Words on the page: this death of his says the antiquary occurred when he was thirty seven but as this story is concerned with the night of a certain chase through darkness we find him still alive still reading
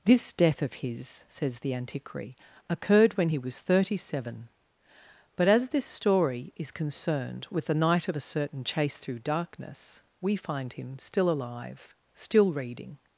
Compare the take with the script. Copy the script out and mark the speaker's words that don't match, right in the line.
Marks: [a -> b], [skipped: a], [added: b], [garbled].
this death of his says the antiquary occurred when he was thirty seven but as this story is concerned with the night of a certain chase through darkness we find him still alive still reading